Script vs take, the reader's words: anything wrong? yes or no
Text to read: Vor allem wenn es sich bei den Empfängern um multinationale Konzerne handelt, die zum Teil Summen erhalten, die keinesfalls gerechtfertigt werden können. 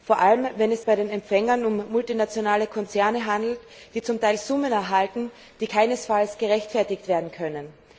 yes